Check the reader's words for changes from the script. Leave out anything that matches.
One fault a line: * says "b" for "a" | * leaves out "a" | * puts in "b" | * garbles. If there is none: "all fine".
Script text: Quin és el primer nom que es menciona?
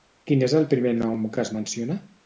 all fine